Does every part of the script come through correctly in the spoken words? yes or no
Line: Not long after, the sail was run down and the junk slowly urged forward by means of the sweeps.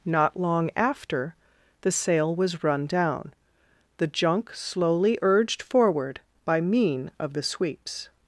no